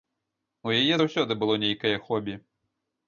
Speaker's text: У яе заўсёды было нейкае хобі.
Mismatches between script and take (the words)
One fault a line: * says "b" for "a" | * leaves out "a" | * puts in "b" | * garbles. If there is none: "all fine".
all fine